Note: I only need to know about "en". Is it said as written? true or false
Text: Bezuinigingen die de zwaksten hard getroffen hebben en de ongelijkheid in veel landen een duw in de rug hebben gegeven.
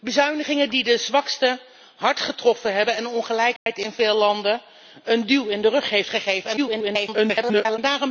true